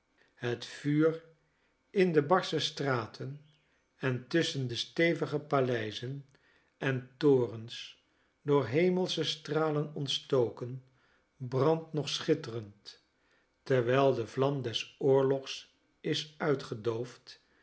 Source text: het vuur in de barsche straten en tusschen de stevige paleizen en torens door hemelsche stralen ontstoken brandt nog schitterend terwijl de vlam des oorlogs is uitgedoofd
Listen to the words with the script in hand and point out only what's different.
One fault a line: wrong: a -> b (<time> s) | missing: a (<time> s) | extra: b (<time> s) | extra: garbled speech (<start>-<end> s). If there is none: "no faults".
no faults